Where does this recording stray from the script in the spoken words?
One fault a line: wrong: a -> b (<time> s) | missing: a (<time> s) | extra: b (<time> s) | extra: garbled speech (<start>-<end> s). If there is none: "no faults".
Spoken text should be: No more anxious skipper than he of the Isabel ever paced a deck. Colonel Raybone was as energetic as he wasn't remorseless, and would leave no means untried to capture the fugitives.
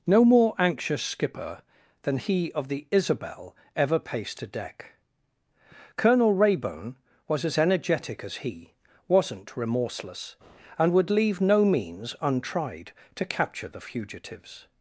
no faults